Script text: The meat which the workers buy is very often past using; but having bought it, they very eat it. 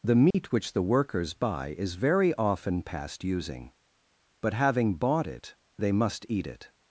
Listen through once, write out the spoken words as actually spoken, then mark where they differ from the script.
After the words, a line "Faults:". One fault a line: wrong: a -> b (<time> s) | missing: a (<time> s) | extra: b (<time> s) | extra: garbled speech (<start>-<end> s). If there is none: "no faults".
The meat which the workers buy is very often past using; but having bought it, they must eat it.
Faults:
wrong: very -> must (5.9 s)